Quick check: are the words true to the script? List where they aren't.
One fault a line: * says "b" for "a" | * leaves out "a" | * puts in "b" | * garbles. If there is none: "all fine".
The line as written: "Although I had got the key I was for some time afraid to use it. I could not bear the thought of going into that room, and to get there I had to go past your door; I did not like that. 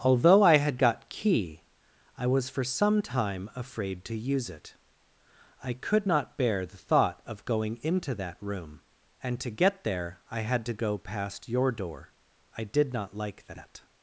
* leaves out "the"